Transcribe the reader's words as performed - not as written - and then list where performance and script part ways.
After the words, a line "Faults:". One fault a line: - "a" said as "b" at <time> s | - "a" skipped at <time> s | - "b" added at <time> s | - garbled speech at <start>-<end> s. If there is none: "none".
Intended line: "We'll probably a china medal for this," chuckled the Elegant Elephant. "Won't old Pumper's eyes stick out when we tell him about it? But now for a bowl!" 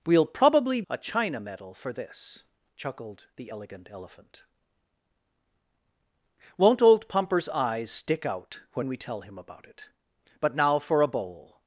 "We'll probably a china medal for this," chuckled the Elegant Elephant. "Won't old Pumper's eyes stick out when we tell him about it? But now for a bowl!"
Faults:
none